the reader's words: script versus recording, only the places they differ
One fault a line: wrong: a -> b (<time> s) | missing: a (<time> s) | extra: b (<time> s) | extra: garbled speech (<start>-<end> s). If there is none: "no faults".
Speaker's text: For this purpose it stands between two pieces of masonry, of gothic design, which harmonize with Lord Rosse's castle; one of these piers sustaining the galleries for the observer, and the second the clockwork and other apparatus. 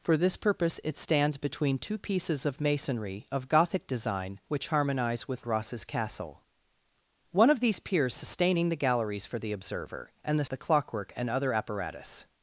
missing: Lord (5.5 s)
missing: second (10.4 s)